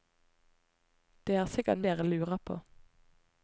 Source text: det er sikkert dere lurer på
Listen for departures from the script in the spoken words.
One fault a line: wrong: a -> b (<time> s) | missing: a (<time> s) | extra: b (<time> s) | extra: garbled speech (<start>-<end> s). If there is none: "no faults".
no faults